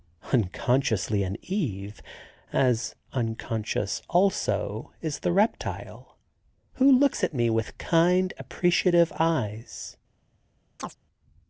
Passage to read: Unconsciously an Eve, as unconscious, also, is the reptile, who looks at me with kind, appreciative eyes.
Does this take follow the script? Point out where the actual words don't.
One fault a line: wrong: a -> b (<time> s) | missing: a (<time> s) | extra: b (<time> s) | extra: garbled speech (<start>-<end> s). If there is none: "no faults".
no faults